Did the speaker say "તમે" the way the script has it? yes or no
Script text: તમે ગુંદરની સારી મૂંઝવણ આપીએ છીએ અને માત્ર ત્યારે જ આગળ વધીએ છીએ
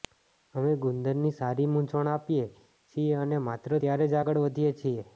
no